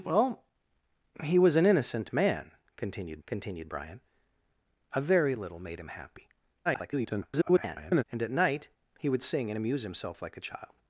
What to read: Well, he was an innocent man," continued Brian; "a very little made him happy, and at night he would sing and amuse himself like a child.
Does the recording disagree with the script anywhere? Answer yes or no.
yes